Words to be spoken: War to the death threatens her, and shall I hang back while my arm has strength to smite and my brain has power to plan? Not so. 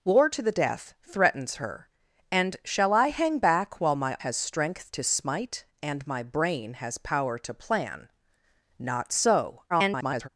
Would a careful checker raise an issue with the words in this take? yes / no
yes